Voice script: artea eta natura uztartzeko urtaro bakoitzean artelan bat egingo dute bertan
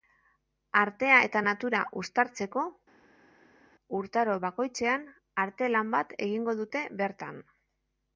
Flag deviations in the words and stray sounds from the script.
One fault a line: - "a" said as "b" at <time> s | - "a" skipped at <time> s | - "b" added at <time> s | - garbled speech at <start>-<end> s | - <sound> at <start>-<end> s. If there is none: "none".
none